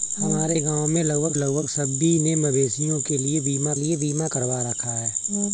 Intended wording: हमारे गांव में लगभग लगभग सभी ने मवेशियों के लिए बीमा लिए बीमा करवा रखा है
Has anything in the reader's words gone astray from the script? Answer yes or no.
no